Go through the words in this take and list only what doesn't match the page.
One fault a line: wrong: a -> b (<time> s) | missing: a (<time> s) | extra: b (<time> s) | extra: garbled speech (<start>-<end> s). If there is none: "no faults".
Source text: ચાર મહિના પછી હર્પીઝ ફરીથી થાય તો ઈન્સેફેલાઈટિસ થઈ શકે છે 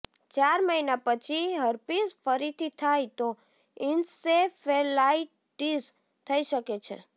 no faults